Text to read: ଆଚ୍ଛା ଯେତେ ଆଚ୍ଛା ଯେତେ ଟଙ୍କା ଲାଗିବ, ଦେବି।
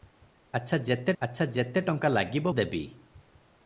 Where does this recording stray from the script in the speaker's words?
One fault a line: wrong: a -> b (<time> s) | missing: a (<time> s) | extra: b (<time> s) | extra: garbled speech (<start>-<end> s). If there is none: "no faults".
no faults